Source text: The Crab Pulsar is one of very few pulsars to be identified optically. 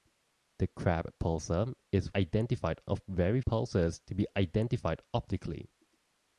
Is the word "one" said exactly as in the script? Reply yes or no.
no